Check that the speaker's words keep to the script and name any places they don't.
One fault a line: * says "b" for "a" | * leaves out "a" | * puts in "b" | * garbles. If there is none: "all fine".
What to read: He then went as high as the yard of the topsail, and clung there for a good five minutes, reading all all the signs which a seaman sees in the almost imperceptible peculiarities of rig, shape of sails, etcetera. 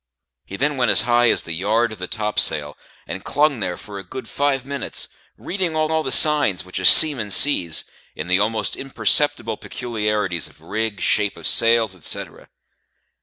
all fine